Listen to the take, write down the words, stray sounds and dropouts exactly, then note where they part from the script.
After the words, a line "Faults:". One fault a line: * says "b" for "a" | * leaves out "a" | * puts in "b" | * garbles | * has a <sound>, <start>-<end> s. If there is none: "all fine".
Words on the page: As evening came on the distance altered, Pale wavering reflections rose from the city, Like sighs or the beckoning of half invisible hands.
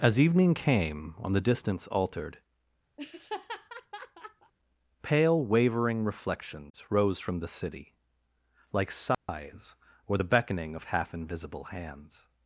As evening came on the distance altered, Pale wavering reflections rose from the city, Like sighs or the beckoning of half invisible hands.
Faults:
* has a laugh, 3.0-4.5 s
* has a dropout, 9.1-9.3 s